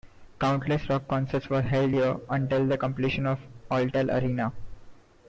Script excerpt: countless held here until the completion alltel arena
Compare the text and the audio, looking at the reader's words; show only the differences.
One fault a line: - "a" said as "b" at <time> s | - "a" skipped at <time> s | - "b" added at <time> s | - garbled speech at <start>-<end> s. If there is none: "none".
- "rock concerts were" added at 0.9 s
- "of" added at 3.3 s